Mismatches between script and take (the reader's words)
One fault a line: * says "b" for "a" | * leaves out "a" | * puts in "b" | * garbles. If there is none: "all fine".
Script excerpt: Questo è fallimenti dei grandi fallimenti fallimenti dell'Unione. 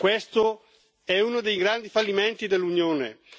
* says "uno" for "fallimenti"
* leaves out "fallimenti"